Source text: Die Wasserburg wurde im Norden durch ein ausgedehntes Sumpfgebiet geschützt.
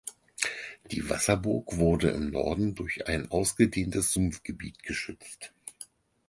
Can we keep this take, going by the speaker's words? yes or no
yes